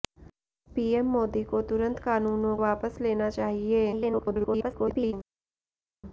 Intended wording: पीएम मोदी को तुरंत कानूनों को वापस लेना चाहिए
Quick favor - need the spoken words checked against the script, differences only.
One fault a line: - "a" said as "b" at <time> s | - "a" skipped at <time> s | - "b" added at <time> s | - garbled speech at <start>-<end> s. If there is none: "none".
- "को" skipped at 2.6 s
- garbled speech at 3.9-5.1 s